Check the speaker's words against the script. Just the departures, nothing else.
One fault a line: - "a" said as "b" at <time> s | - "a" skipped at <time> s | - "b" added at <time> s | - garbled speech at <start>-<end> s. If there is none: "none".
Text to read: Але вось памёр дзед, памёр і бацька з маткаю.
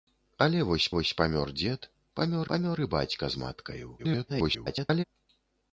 - "вось" added at 0.9 s
- "памёр" added at 2.5 s
- garbled speech at 4.0-5.0 s